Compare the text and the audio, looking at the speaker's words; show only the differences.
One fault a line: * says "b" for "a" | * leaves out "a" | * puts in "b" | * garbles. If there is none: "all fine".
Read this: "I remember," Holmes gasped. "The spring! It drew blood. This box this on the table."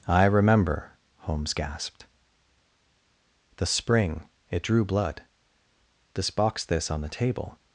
all fine